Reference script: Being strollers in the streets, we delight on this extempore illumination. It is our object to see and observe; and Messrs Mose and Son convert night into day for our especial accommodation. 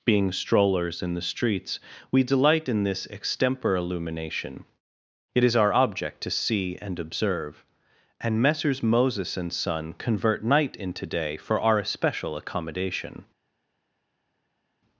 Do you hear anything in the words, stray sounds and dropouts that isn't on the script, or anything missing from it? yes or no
yes